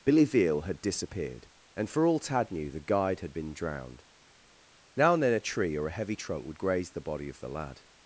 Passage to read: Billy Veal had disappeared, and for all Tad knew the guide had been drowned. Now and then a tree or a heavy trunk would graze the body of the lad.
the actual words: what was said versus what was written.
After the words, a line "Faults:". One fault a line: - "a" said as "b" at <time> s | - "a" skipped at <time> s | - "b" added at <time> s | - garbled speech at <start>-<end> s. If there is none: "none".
Billy Veal had disappeared, and for all Tad knew the guide had been drowned. Now and then a tree or a heavy trunk would graze the body of the lad.
Faults:
none